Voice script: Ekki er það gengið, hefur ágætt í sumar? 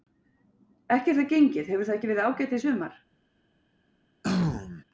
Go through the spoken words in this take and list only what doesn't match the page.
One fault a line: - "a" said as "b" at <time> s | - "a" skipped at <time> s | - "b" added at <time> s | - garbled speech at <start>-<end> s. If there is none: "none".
- "það ekki verið" added at 1.9 s